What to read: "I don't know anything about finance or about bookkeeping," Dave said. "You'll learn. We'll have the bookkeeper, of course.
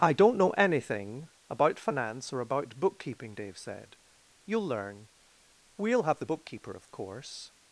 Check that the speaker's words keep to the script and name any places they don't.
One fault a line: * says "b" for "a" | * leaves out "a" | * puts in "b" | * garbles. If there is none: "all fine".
all fine